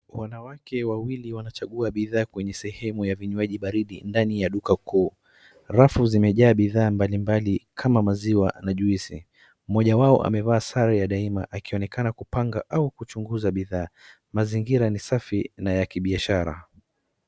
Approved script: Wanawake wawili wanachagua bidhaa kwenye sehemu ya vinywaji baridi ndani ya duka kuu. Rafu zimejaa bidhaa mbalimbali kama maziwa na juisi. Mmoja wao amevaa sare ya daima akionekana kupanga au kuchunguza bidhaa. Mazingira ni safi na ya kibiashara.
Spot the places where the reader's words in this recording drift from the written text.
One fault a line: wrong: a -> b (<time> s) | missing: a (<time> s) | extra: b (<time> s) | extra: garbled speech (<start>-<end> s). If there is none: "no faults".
no faults